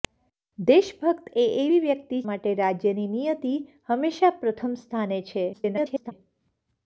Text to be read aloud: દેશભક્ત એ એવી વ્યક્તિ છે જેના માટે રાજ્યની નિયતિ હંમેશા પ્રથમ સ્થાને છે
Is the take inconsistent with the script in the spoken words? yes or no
yes